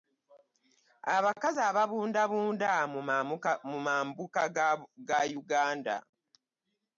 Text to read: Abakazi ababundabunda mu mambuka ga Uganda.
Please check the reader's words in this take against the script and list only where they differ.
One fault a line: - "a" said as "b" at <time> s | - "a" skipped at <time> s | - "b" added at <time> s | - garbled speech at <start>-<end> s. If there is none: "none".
none